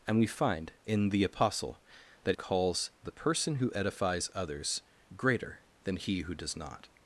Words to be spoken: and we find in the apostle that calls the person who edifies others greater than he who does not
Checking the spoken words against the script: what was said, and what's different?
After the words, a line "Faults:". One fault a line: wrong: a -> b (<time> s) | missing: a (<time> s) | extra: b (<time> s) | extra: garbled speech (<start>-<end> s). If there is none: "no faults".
and we find in the apostle that calls the person who edifies others greater than he who does not
Faults:
no faults